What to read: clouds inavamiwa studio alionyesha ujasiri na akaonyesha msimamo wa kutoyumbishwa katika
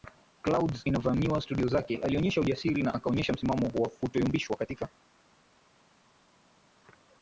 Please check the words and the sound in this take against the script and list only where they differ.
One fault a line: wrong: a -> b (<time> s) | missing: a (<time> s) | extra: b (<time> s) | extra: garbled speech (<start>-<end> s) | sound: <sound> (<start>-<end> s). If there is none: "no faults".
extra: zake (1.6 s)